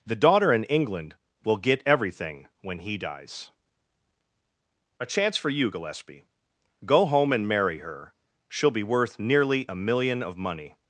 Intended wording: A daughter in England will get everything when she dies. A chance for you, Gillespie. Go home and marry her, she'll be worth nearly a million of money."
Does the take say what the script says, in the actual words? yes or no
no